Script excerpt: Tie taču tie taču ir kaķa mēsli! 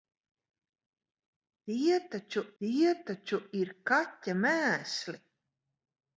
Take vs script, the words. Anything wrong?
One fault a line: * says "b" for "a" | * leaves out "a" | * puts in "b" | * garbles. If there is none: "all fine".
all fine